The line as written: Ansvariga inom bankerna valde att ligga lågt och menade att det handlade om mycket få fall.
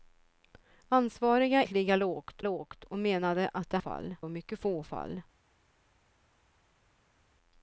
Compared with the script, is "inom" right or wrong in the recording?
wrong